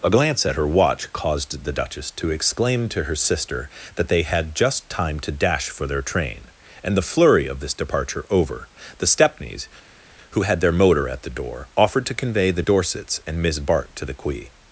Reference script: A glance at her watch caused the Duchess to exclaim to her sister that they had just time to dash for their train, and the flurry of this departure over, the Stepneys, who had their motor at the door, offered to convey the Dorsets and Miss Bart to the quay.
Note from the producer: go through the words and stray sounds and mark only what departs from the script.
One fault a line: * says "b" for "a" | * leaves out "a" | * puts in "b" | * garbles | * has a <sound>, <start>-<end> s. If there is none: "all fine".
all fine